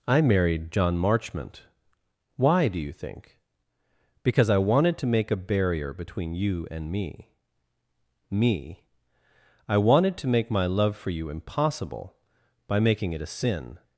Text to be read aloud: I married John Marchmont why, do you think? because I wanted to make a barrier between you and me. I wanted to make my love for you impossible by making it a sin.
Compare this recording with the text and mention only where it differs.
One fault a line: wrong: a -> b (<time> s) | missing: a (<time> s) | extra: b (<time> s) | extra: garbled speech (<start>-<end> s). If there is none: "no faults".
extra: me (8.3 s)